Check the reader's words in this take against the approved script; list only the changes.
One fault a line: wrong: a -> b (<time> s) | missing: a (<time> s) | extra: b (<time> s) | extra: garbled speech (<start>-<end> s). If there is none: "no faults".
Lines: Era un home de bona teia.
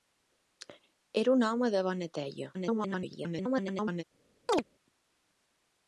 extra: garbled speech (2.5-4.0 s)